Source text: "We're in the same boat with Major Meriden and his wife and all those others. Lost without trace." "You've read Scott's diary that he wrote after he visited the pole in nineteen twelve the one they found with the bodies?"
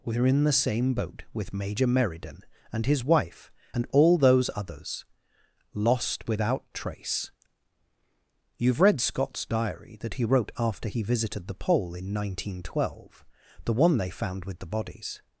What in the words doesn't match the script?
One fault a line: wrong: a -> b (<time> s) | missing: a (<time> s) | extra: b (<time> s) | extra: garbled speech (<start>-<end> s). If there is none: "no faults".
no faults